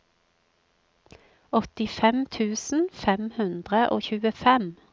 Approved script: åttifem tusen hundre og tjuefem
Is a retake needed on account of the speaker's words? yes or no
yes